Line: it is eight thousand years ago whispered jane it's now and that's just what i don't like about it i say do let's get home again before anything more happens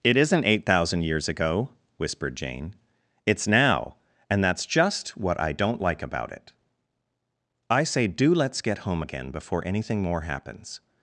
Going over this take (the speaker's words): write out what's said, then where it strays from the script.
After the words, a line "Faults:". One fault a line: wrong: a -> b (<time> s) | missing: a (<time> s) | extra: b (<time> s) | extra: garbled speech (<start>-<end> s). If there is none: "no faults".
it isn't eight thousand years ago whispered jane it's now and that's just what i don't like about it i say do let's get home again before anything more happens
Faults:
wrong: is -> isn't (0.2 s)